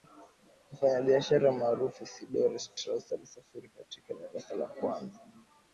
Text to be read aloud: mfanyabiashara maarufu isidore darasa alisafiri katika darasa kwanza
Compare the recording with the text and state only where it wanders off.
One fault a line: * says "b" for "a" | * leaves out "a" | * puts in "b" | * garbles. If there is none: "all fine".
* says "strauss" for "darasa"
* puts in "la"